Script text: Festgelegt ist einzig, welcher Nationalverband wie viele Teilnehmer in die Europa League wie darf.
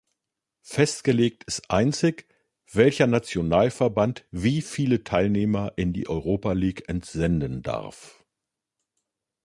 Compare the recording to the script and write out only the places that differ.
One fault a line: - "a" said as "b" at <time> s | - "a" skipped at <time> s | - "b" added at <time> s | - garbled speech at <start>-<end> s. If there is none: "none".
- "wie" said as "entsenden" at 6.9 s